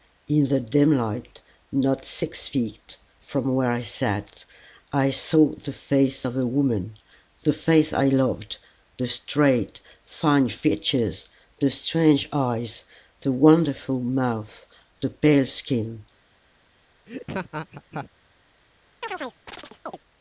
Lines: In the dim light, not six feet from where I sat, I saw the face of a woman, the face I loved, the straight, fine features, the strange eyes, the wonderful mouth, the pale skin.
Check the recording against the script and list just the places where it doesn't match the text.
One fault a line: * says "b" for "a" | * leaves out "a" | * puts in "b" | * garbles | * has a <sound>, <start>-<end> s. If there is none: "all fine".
* has a laugh, 17.1-18.1 s
* has a chirp, 19.0-20.0 s